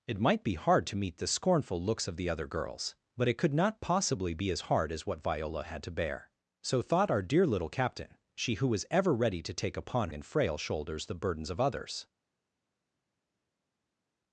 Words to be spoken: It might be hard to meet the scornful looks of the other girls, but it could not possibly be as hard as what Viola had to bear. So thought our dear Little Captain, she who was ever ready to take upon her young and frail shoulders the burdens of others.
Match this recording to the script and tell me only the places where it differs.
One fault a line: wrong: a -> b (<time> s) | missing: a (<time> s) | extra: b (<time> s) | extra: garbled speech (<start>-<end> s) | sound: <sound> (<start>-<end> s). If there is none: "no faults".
missing: her young (10.1 s)